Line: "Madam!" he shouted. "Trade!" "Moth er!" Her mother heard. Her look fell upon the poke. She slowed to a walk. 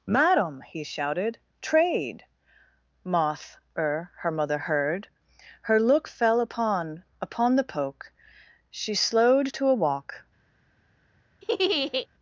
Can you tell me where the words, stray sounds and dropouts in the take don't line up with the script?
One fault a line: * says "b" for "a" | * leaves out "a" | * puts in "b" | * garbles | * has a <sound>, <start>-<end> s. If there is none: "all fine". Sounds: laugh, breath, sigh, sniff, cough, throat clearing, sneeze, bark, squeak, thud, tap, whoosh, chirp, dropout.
* puts in "upon"
* has a laugh, 11.4-12.1 s